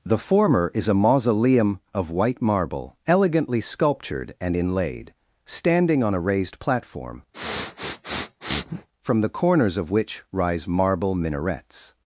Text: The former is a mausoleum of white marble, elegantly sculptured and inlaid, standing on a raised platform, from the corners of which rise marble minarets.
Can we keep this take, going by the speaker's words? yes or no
yes